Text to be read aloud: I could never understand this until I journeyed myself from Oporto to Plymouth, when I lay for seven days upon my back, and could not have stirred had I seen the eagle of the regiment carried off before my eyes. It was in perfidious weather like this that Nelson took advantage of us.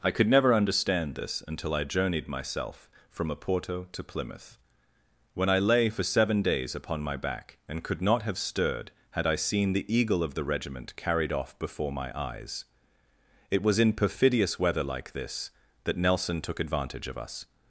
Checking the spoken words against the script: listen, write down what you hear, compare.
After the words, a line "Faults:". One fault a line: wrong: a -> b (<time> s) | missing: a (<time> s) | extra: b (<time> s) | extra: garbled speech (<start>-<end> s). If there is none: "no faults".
I could never understand this until I journeyed myself from Oporto to Plymouth, when I lay for seven days upon my back, and could not have stirred had I seen the eagle of the regiment carried off before my eyes. It was in perfidious weather like this that Nelson took advantage of us.
Faults:
no faults